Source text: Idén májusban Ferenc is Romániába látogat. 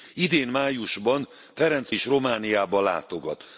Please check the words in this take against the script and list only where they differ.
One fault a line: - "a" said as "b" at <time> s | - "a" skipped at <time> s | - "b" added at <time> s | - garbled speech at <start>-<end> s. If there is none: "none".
none